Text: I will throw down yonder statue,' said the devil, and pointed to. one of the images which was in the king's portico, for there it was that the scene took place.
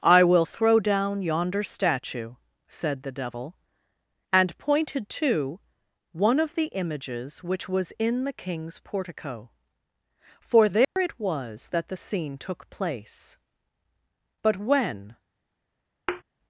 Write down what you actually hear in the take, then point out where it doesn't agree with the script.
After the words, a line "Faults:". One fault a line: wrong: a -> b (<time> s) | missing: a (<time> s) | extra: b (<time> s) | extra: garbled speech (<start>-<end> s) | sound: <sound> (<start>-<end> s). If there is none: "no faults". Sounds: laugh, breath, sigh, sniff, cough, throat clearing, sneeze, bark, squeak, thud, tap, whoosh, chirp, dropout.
I will throw down yonder statue,' said the devil, and pointed to. one of the images which was in the king's portico, for there it was that the scene took place. But when
Faults:
sound: dropout (10.8-11.0 s)
extra: But when (14.4 s)
sound: thud (16.1-16.2 s)